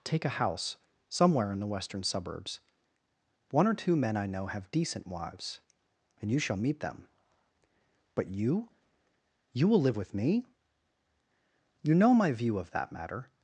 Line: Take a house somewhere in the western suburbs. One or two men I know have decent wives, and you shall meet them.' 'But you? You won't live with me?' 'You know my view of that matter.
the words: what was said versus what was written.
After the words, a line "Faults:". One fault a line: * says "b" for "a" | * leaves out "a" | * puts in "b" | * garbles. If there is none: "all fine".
Take a house somewhere in the western suburbs. One or two men I know have decent wives, and you shall meet them.' 'But you? You will live with me?' 'You know my view of that matter.
Faults:
* says "will" for "won't"